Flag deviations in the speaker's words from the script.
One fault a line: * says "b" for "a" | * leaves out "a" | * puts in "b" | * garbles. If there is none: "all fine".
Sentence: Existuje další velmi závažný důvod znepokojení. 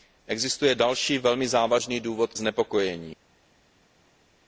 all fine